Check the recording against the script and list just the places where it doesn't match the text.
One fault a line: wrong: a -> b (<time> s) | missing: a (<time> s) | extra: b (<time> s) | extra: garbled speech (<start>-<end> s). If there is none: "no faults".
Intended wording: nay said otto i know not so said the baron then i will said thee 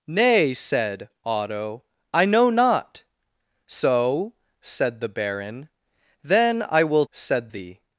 no faults